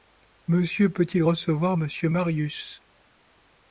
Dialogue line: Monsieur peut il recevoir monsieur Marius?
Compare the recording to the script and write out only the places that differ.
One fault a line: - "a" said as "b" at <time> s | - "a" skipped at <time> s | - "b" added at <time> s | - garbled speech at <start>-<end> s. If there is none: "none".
none